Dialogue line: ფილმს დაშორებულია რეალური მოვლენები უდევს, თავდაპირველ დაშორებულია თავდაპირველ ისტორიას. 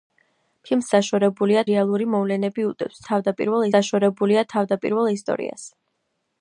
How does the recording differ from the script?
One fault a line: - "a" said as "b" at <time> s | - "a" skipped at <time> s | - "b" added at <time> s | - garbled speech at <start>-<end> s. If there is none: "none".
none